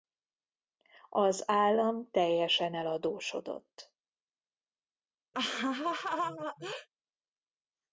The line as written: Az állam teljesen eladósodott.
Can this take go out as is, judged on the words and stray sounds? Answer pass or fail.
fail